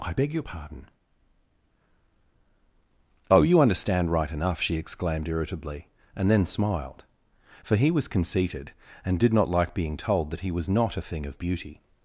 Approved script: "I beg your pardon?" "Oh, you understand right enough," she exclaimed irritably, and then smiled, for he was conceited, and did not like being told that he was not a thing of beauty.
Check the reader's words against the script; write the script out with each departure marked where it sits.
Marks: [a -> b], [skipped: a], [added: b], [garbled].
"I beg your pardon?" "Oh, you understand right enough," she exclaimed irritably, and then smiled, for he was conceited, and did not like being told that he was not a thing of beauty.